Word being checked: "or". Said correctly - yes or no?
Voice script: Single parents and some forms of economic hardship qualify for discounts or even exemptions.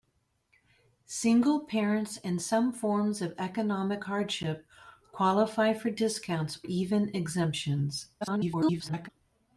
no